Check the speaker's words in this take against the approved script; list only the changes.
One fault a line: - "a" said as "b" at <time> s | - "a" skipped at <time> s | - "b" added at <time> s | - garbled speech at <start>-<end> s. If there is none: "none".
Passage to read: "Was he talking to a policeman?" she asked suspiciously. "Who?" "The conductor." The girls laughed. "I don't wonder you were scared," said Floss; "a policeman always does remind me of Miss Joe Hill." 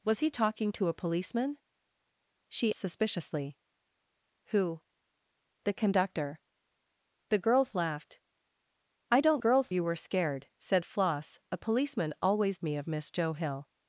- "asked" skipped at 2.7 s
- "wonder" said as "girls" at 9.4 s
- "does remind" skipped at 12.6 s